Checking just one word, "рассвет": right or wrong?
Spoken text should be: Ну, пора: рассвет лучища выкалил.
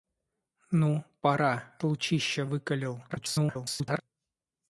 wrong